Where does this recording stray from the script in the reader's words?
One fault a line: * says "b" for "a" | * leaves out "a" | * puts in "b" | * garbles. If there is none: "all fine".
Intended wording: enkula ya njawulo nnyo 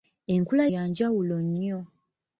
all fine